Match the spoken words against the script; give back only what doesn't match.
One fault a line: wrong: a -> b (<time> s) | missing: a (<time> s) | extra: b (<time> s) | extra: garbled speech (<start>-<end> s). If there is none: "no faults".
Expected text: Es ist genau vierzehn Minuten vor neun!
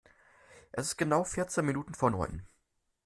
no faults